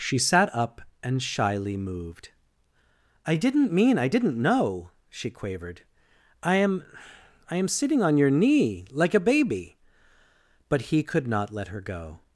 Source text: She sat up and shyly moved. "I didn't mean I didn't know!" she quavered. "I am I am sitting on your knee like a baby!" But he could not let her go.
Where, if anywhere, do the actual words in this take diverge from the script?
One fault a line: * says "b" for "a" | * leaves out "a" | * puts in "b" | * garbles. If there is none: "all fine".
all fine